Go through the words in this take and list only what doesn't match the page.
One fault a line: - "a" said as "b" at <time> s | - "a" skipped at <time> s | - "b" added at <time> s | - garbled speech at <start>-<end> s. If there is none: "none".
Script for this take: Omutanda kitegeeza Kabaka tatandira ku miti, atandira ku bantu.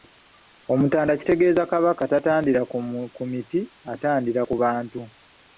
none